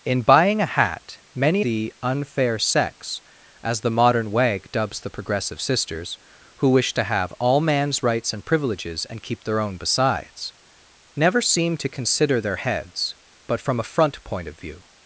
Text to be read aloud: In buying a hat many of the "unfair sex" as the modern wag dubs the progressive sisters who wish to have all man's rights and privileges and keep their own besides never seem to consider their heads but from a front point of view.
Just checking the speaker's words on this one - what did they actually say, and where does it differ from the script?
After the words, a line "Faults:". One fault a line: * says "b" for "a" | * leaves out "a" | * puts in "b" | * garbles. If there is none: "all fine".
In buying a hat many the "unfair sex" as the modern wag dubs the progressive sisters who wish to have all man's rights and privileges and keep their own besides never seem to consider their heads but from a front point of view.
Faults:
* leaves out "of"